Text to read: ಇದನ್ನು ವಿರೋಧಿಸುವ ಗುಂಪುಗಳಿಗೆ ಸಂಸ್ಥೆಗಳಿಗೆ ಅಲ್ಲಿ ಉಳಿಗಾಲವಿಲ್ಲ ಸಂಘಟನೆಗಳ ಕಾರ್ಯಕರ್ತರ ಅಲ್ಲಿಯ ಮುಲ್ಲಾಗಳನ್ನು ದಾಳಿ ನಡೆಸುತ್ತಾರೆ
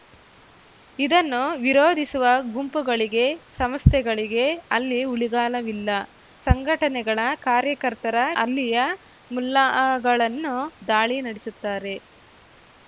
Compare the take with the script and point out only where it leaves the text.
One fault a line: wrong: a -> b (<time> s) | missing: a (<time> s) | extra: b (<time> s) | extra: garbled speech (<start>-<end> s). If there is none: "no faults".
no faults